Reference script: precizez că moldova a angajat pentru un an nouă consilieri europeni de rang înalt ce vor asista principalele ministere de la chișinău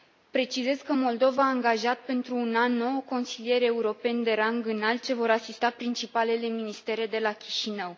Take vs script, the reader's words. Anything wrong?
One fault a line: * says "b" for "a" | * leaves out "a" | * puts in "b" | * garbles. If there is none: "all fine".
all fine